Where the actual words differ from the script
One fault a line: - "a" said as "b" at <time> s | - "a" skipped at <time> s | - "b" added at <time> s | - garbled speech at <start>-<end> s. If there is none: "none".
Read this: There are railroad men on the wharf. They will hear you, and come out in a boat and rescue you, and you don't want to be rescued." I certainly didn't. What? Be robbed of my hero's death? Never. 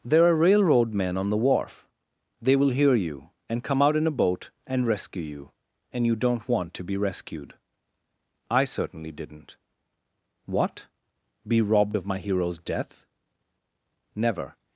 none